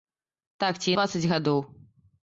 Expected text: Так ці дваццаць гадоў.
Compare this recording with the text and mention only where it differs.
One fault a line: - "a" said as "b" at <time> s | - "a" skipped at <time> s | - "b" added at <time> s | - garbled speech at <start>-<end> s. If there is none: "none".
none